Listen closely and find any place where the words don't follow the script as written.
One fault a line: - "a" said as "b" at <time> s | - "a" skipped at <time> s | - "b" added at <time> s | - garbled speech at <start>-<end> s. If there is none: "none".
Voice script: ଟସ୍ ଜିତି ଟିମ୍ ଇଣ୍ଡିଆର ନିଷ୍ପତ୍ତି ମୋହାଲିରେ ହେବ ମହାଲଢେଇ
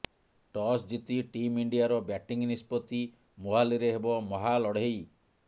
- "ବ୍ୟାଟିଂ" added at 2.0 s